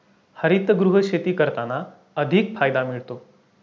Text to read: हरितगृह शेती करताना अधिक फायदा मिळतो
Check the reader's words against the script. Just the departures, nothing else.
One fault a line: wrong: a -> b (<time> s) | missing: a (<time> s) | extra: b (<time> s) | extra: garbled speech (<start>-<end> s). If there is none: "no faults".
no faults